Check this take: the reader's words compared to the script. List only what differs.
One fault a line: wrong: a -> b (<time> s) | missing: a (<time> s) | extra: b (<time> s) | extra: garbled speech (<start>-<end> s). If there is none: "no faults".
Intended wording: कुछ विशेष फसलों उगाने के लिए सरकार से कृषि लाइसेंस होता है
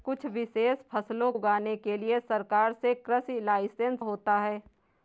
no faults